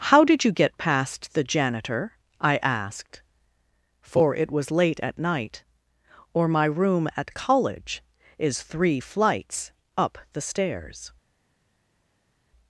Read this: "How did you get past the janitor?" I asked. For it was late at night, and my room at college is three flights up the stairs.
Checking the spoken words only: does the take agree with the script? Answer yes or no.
no